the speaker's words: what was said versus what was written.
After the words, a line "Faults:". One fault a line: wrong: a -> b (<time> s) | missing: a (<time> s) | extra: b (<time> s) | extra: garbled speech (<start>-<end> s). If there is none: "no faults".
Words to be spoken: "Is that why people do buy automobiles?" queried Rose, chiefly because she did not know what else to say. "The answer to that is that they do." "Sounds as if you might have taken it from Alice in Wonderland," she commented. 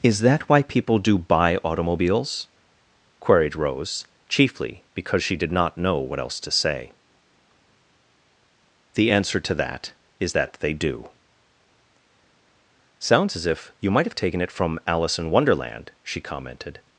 "Is that why people do buy automobiles?" queried Rose, chiefly because she did not know what else to say. "The answer to that is that they do." "Sounds as if you might have taken it from Alice in Wonderland," she commented.
Faults:
no faults